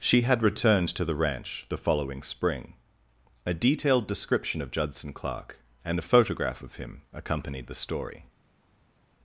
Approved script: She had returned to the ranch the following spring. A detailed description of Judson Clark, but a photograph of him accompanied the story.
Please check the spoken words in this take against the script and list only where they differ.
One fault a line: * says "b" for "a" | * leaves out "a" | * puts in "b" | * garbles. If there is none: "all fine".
* says "and" for "but"